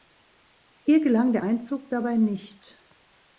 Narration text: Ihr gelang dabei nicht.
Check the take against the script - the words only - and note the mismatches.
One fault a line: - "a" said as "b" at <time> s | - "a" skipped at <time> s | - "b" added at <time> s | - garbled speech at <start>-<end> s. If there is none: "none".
- "der Einzug" added at 1.3 s